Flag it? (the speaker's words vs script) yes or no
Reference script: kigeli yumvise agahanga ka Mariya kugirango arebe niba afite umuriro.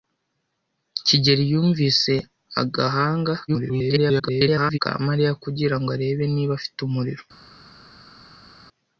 yes